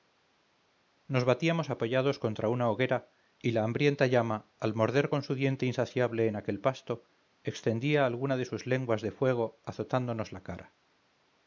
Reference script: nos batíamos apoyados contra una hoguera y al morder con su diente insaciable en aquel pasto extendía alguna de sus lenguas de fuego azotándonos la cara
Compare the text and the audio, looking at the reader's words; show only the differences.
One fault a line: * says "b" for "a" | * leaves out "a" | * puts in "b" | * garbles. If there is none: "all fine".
* puts in "la hambrienta llama"